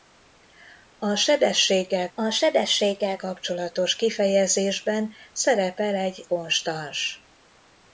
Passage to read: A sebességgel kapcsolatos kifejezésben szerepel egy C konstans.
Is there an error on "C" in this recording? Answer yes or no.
yes